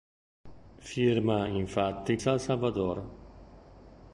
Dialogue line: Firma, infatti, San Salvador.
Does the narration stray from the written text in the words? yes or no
no